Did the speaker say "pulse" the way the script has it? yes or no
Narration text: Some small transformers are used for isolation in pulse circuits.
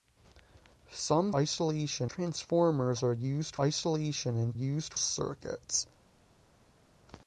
no